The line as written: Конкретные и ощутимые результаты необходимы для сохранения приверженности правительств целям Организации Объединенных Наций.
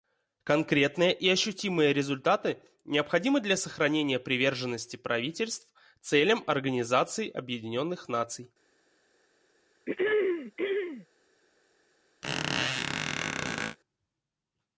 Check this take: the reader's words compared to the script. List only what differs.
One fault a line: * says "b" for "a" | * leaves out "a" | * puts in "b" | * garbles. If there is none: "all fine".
all fine